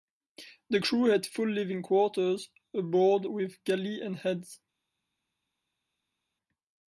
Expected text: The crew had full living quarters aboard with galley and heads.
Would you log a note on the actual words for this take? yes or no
no